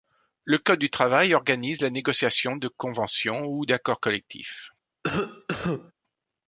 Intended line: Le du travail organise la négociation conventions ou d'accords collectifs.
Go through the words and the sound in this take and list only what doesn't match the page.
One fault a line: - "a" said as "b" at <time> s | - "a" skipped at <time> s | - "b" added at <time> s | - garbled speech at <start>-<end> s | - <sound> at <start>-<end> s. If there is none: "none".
- "code" added at 0.6 s
- "de" added at 2.5 s
- cough at 5.0-5.9 s